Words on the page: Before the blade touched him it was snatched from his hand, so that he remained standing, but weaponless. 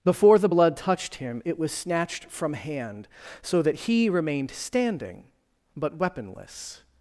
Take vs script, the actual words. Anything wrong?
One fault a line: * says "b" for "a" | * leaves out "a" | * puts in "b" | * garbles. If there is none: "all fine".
* says "blood" for "blade"
* leaves out "his"